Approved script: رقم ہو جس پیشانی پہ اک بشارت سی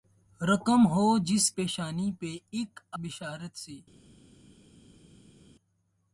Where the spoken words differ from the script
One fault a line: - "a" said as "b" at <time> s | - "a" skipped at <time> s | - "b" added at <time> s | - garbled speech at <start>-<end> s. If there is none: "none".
none